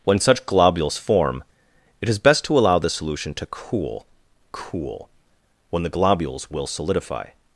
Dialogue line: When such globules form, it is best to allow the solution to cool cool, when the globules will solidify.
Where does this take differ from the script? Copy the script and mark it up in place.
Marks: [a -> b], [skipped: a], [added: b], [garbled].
When such globules form, it is best to allow the solution to cool cool, when the globules will solidify.